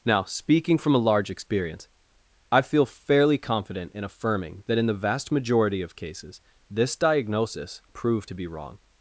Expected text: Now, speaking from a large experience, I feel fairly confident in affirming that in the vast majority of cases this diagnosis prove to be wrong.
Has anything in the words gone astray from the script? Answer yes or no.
no